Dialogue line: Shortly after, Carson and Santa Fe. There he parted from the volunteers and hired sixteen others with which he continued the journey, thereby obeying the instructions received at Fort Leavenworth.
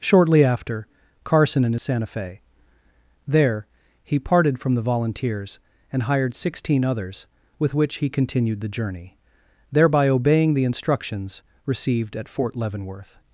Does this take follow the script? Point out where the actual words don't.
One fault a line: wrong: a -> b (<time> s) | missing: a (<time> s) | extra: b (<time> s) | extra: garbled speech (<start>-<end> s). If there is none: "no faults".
no faults